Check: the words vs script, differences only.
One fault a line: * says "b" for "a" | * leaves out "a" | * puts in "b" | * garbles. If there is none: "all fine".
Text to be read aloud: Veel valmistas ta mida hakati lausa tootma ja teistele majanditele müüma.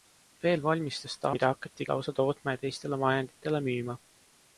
all fine